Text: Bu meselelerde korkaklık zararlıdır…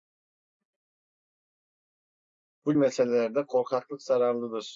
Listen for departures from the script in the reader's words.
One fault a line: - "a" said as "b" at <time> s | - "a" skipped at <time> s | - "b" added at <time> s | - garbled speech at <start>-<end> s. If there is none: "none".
none